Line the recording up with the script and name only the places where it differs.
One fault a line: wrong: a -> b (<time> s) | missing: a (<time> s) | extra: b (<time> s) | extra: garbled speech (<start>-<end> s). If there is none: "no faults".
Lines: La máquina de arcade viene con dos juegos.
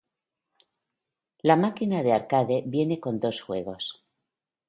no faults